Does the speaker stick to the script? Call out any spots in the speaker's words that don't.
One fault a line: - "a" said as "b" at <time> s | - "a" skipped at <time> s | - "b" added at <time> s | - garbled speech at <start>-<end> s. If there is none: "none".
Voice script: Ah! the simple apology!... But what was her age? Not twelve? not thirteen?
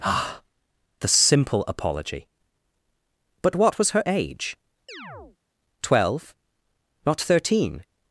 - "Not" skipped at 4.6 s